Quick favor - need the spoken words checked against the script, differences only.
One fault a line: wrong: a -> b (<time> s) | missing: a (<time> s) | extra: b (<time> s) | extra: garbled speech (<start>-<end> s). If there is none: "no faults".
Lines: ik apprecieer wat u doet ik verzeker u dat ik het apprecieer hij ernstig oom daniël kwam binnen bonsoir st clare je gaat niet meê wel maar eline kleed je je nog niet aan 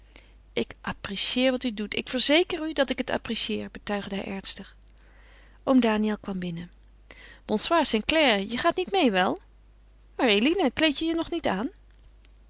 extra: betuigde (3.7 s)